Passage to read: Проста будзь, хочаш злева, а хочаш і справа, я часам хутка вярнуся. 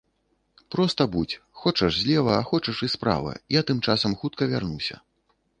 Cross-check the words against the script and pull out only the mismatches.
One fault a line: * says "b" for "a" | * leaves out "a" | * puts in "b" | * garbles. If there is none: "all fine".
* puts in "тым"